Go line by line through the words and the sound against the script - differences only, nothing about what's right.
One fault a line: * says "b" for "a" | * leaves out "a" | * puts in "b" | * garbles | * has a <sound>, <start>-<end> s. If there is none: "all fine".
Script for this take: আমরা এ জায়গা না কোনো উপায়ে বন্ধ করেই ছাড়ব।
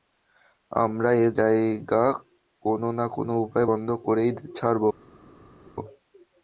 * puts in "কোনো"